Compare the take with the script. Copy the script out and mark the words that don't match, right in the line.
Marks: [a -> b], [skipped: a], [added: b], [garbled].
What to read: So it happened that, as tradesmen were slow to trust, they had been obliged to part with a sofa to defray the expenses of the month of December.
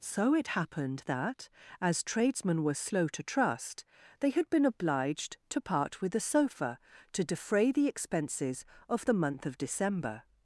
So it happened that, as tradesmen were slow to trust, they had been obliged to part with a sofa to defray the expenses of the month of December.